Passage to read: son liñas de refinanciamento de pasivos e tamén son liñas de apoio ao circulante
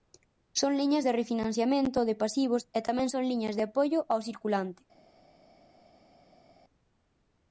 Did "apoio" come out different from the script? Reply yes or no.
no